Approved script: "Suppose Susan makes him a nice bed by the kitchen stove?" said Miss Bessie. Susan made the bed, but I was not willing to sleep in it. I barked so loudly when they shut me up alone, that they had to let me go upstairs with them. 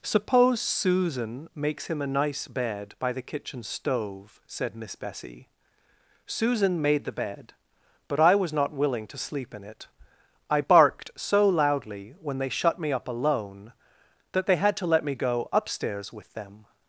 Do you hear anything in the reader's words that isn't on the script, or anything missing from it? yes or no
no